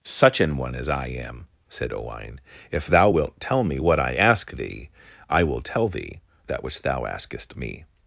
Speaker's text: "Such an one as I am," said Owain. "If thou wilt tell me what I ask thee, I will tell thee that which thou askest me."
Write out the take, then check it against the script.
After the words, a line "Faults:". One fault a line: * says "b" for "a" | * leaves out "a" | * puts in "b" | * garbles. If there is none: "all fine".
"Such an one as I am," said Owain. "If thou wilt tell me what I ask thee, I will tell thee that which thou askest me."
Faults:
all fine